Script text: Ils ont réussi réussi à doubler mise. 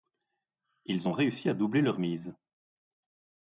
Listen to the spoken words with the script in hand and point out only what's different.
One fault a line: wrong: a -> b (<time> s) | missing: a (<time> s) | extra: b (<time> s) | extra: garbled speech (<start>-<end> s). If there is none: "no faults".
missing: réussi (1.5 s)
extra: leur (1.8 s)